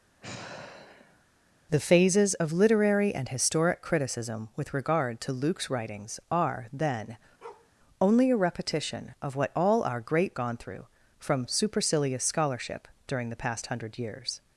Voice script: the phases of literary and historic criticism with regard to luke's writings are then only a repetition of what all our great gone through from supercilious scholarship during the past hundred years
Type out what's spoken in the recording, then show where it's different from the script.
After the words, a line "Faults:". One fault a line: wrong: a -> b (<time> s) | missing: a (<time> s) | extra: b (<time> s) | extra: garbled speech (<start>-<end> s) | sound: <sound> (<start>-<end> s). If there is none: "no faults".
the phases of literary and historic criticism with regard to luke's writings are then only a repetition of what all our great gone through from supercilious scholarship during the past hundred years
Faults:
sound: sigh (0.2-1.3 s)
sound: bark (7.4-7.7 s)